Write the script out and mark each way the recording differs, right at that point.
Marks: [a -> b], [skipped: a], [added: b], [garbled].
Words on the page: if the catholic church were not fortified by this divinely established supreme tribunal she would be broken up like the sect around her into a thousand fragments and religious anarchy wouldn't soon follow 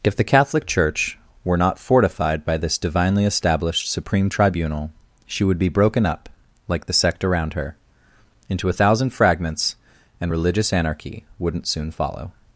if the catholic church were not fortified by this divinely established supreme tribunal she would be broken up like the sect around her into a thousand fragments and religious anarchy wouldn't soon follow